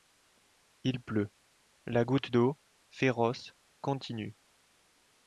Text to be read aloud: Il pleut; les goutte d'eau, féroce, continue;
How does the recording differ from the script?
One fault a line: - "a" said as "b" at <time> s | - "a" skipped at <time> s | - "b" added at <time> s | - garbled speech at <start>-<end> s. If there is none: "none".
- "les" said as "la" at 1.9 s